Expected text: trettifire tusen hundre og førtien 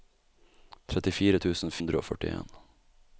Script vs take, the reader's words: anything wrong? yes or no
no